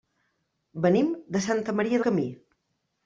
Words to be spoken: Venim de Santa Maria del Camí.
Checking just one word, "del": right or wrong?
wrong